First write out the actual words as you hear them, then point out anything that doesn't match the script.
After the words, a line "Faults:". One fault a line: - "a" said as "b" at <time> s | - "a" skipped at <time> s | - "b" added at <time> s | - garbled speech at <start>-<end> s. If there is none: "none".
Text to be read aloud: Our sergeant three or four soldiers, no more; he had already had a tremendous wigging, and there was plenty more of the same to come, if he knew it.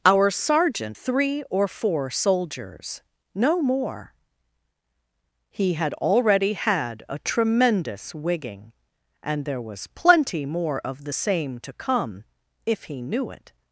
Our sergeant three or four soldiers, no more; he had already had a tremendous wigging, and there was plenty more of the same to come, if he knew it.
Faults:
none